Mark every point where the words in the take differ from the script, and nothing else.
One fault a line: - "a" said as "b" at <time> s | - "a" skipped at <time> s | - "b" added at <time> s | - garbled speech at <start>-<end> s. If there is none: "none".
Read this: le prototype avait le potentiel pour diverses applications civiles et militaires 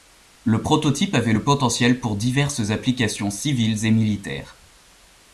none